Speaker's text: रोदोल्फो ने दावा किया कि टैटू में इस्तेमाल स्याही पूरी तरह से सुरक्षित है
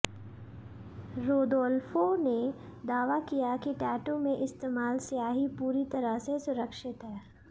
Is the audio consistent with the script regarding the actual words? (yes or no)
yes